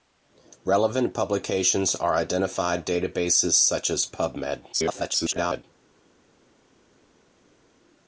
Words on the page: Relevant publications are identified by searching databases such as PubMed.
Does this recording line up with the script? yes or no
no